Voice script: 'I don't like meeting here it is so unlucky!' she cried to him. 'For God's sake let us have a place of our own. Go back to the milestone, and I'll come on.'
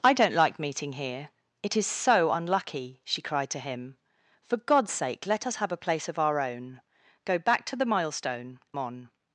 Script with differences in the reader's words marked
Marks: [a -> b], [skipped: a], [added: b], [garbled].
'I don't like meeting here it is so unlucky!' she cried to him. 'For God's sake let us have a place of our own. Go back to the milestone, [skipped: and I'll come] on.'